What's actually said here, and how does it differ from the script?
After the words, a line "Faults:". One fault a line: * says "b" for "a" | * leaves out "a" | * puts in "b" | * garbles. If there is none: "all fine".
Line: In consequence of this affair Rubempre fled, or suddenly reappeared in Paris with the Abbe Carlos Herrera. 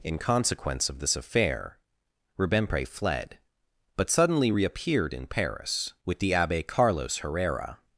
In consequence of this affair Rubempre fled, but suddenly reappeared in Paris with the Abbe Carlos Herrera.
Faults:
* says "but" for "or"